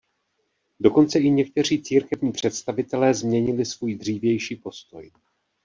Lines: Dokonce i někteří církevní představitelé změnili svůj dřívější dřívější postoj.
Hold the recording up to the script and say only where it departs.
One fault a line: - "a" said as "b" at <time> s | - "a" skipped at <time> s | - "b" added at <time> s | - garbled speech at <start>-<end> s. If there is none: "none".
- "dřívější" skipped at 4.6 s